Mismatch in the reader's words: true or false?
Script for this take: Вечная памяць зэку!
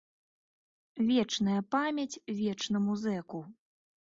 true